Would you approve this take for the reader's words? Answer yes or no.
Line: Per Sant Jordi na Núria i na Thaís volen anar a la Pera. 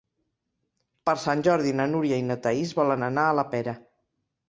yes